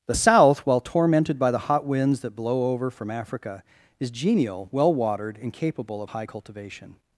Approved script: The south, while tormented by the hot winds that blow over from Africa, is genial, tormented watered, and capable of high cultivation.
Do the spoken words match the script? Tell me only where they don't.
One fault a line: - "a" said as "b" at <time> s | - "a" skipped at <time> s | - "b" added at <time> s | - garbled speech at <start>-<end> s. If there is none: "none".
- "tormented" said as "well" at 4.7 s